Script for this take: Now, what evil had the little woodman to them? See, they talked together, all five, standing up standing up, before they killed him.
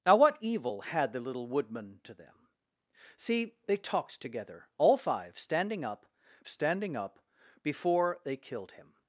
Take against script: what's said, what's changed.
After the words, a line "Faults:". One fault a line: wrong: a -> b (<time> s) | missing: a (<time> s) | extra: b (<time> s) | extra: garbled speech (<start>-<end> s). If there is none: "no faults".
Now, what evil had the little woodman to them? See, they talked together, all five, standing up standing up, before they killed him.
Faults:
no faults